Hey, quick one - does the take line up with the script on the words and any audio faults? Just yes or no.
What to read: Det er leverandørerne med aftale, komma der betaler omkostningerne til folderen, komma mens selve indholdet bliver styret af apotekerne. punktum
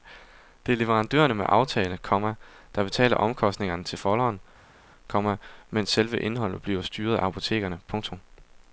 yes